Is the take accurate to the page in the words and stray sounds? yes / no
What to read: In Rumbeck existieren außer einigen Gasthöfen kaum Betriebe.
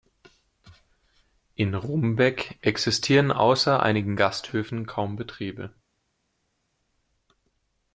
yes